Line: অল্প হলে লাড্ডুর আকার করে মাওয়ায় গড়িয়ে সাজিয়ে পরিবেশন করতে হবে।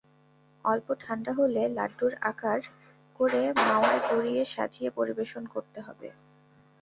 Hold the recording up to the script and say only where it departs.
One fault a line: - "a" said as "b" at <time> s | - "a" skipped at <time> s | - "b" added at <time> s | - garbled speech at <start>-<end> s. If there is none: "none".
- "ঠান্ডা" added at 1.0 s